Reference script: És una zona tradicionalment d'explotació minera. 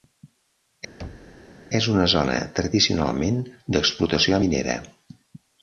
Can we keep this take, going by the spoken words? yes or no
yes